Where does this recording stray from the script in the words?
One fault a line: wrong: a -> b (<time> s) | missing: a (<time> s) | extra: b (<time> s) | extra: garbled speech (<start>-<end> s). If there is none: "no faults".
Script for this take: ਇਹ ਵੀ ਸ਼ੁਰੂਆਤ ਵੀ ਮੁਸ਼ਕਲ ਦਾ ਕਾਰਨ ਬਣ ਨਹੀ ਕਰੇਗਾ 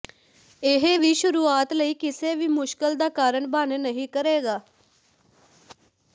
extra: ਲਈ ਕਿਸੇ (1.7 s)